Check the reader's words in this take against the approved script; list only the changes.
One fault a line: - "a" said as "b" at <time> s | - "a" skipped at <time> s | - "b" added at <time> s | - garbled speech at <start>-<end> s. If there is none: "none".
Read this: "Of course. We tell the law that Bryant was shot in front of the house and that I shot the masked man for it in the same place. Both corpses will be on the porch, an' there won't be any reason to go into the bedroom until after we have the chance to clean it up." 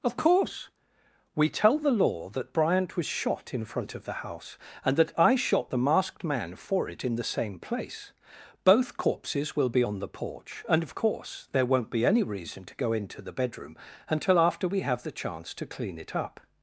- "an" said as "and of course" at 10.7 s